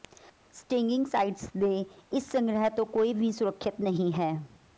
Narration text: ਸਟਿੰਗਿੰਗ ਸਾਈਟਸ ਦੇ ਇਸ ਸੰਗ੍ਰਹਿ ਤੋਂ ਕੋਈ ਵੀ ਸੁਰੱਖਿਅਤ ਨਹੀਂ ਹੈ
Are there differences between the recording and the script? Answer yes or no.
no